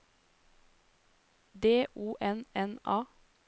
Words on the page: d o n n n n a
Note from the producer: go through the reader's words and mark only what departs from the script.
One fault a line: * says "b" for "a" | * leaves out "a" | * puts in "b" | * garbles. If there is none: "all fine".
* leaves out "n n"